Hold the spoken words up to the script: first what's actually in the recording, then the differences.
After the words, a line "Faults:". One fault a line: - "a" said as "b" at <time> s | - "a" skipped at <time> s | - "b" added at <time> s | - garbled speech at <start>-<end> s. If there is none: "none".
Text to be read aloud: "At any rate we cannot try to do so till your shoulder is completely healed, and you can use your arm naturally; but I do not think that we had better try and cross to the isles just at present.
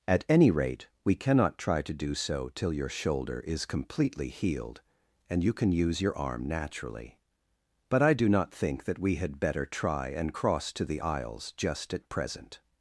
"At any rate we cannot try to do so till your shoulder is completely healed, and you can use your arm naturally; but I do not think that we had better try and cross to the isles just at present.
Faults:
none